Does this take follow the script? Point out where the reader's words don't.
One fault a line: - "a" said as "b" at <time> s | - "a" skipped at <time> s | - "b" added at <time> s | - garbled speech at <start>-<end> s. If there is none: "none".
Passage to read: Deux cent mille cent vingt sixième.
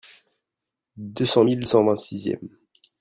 none